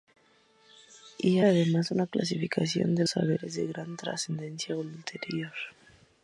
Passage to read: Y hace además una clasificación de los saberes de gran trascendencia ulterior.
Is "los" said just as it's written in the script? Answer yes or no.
no